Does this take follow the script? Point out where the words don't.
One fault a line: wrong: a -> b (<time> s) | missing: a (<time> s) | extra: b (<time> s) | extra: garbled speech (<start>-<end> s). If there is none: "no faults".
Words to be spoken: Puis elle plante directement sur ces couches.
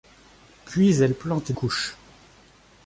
missing: directement sur ces (1.5 s)